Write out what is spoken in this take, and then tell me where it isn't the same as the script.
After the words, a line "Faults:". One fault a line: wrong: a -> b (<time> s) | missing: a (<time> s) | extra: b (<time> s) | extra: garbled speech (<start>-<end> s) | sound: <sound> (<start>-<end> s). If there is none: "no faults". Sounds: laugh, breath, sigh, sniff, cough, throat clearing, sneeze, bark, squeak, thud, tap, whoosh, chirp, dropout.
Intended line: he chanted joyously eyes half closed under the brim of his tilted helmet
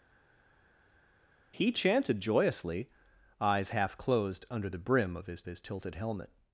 he chanted joyously eyes half closed under the brim of his his tilted helmet
Faults:
extra: his (5.4 s)